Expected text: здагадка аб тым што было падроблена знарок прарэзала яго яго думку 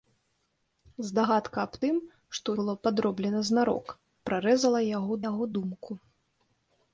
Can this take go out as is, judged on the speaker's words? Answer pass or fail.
pass